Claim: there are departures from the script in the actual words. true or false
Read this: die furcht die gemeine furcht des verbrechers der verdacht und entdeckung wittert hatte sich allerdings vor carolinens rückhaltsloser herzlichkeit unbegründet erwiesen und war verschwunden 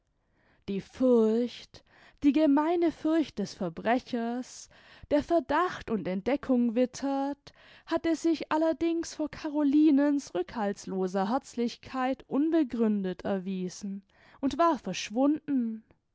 false